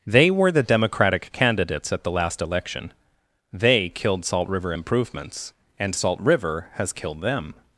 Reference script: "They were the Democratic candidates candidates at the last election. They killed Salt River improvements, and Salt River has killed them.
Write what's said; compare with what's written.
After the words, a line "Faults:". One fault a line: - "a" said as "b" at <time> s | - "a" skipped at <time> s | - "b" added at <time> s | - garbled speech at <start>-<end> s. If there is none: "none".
"They were the Democratic candidates at the last election. They killed Salt River improvements, and Salt River has killed them.
Faults:
- "candidates" skipped at 1.9 s